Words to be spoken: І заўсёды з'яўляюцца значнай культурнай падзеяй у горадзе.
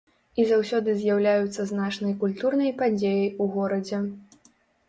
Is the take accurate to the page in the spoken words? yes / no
yes